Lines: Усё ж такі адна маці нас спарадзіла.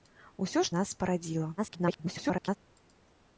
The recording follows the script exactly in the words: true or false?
false